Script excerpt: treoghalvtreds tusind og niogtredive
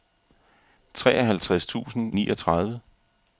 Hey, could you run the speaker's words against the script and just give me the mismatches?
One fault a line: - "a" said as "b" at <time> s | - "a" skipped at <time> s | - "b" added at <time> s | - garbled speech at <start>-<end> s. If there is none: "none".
- "og" skipped at 2.1 s